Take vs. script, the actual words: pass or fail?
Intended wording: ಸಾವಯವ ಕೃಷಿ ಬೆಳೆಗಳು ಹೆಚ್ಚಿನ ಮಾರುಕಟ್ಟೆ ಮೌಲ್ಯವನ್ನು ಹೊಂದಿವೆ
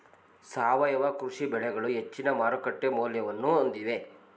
pass